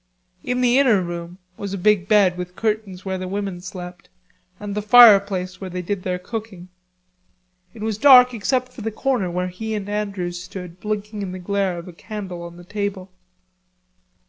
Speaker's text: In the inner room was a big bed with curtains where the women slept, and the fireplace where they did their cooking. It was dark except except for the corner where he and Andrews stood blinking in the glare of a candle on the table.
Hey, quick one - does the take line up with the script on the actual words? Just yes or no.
no